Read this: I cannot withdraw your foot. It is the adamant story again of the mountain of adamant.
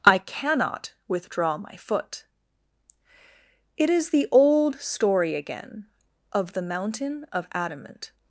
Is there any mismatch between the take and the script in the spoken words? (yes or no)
yes